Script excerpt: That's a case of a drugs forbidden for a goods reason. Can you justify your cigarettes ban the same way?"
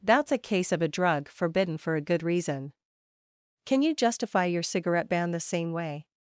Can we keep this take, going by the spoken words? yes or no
no